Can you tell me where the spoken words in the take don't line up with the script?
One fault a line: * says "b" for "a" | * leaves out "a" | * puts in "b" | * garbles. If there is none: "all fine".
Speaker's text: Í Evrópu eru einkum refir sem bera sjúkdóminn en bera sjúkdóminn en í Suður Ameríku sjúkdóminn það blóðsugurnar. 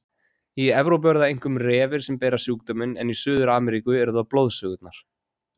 * puts in "það"
* leaves out "bera sjúkdóminn en"
* says "eru" for "sjúkdóminn"